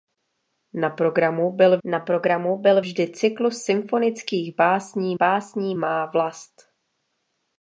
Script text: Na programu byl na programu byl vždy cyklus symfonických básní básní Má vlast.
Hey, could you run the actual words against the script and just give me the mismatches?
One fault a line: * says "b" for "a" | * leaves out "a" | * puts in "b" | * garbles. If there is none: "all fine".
all fine